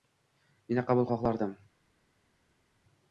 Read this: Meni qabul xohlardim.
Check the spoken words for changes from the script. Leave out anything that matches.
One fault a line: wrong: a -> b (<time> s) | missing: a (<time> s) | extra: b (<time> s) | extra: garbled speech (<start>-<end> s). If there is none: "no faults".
no faults